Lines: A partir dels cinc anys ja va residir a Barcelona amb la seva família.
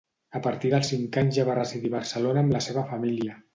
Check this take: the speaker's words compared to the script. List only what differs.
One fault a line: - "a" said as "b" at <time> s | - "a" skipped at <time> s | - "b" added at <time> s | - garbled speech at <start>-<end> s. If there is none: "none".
none